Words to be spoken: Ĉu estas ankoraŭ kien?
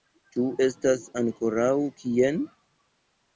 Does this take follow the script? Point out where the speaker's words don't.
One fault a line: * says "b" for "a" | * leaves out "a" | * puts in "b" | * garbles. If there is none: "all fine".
all fine